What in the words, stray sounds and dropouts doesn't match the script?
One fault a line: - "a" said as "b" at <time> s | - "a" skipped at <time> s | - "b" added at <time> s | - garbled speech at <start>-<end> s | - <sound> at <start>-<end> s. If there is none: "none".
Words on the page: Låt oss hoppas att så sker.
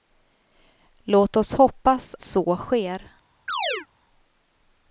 - "att" skipped at 2.1 s
- chirp at 3.5-3.9 s